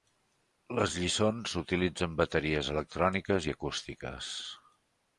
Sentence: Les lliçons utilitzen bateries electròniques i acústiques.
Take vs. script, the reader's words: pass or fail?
pass